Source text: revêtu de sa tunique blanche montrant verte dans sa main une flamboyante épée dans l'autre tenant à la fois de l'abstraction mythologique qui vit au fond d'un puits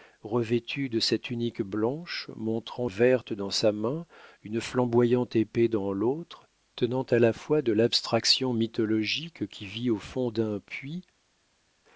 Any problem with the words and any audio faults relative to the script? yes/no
no